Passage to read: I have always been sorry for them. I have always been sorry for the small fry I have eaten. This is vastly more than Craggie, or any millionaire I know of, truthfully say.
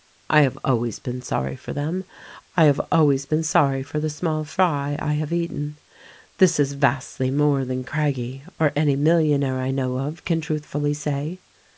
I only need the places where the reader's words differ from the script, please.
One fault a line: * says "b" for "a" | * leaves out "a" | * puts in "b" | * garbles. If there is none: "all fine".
* puts in "can"